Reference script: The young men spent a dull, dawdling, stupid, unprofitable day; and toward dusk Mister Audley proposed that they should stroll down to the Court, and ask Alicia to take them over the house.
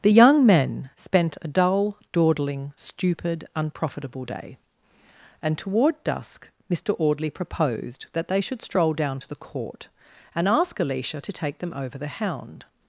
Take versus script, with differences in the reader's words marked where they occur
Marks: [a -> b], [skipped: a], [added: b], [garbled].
The young men spent a dull, dawdling, stupid, unprofitable day; and toward dusk Mister Audley proposed that they should stroll down to the Court, and ask Alicia to take them over the [house. -> hound]